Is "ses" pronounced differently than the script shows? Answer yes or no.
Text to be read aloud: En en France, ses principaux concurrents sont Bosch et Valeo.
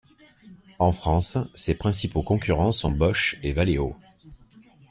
no